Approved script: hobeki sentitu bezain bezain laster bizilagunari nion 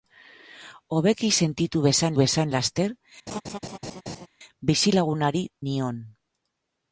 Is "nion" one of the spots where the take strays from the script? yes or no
no